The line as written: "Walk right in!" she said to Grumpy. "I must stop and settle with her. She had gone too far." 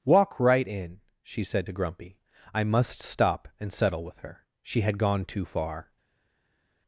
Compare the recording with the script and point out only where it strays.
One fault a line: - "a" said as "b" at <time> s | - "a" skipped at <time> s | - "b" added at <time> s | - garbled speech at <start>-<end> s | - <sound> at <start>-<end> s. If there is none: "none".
none